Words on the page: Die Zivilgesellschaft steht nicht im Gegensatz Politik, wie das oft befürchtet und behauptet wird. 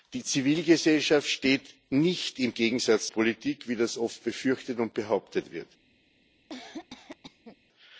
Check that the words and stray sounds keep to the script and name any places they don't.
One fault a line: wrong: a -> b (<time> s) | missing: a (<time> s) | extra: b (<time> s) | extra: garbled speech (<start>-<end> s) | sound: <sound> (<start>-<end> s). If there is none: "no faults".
sound: cough (6.5-7.6 s)